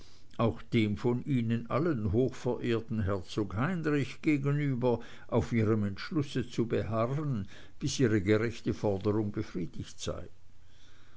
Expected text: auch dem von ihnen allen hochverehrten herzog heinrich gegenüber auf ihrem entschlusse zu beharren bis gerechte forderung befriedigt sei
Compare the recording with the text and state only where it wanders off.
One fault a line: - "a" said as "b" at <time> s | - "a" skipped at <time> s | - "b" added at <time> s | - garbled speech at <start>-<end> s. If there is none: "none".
- "ihre" added at 8.0 s